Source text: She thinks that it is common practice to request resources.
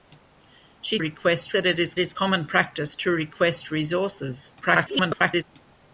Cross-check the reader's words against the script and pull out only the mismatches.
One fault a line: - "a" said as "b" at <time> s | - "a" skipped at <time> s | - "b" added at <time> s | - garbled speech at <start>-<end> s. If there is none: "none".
- "thinks" said as "request" at 1.0 s
- "is" added at 2.0 s
- garbled speech at 4.6-5.4 s